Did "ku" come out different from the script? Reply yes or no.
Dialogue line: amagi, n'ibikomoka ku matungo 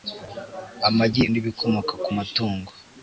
no